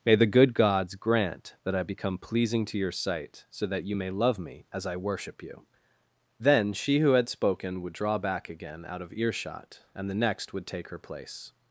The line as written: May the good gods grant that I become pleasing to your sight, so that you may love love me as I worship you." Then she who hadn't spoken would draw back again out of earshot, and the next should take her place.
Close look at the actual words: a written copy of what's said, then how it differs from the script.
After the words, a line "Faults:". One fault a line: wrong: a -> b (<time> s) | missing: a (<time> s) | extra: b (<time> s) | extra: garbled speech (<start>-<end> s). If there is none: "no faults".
May the good gods grant that I become pleasing to your sight, so that you may love me as I worship you." Then she who had spoken would draw back again out of earshot, and the next would take her place.
Faults:
missing: love (4.4 s)
wrong: hadn't -> had (7.1 s)
wrong: should -> would (10.5 s)